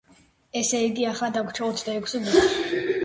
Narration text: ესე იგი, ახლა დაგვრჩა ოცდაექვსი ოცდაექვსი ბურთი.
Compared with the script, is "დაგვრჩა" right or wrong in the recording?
right